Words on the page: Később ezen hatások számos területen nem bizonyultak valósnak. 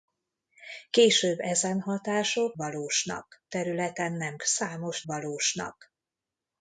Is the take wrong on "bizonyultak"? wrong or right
wrong